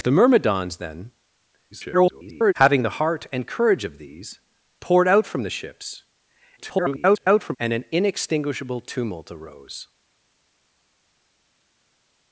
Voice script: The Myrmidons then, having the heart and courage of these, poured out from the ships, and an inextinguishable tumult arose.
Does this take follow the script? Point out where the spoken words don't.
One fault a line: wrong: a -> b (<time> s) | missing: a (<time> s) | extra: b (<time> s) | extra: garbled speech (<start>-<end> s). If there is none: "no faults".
extra: garbled speech (1.7-2.5 s)
extra: garbled speech (6.6-7.6 s)